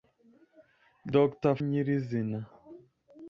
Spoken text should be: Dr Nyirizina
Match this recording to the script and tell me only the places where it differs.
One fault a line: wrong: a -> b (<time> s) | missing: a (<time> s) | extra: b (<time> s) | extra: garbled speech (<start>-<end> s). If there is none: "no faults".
no faults